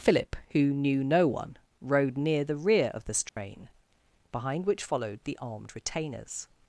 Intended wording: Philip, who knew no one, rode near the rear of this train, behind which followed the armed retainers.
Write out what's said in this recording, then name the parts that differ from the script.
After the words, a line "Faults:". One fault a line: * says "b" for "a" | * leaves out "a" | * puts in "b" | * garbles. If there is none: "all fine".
Philip, who knew no one, rode near the rear of this train, behind which followed the armed retainers.
Faults:
all fine